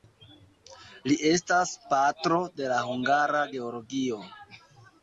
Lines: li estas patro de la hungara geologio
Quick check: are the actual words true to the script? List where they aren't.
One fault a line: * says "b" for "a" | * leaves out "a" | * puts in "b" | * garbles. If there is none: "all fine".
all fine